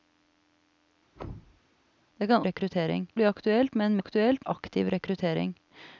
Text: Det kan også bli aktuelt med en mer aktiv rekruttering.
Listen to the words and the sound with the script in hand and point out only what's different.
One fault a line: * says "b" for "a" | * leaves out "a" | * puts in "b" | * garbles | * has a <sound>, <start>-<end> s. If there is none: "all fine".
* has a thud, 1.1-1.6 s
* says "rekruttering" for "også"
* says "aktuelt" for "mer"